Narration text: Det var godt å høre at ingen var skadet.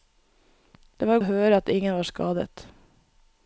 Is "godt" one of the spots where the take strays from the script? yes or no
yes